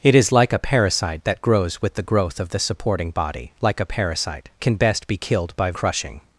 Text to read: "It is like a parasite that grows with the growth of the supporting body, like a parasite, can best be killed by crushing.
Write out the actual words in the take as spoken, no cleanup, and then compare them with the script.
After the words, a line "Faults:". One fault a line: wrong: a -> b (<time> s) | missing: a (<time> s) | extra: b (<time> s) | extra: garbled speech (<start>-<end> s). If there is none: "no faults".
"It is like a parasite that grows with the growth of the supporting body, like a parasite, can best be killed by crushing.
Faults:
no faults